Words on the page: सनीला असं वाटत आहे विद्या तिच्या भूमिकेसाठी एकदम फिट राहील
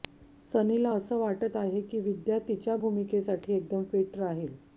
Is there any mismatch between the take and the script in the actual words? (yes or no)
yes